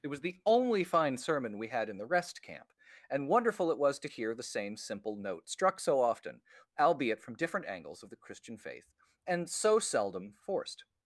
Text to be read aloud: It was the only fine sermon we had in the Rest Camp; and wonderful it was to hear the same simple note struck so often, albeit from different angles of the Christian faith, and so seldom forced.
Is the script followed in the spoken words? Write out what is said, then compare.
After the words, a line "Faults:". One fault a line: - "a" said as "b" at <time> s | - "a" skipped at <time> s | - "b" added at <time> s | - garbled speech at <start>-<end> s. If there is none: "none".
It was the only fine sermon we had in the Rest Camp; and wonderful it was to hear the same simple note struck so often, albeit from different angles of the Christian faith, and so seldom forced.
Faults:
none